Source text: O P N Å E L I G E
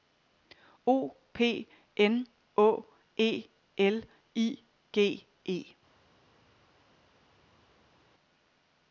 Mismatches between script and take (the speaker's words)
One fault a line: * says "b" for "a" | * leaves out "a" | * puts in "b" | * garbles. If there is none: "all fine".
all fine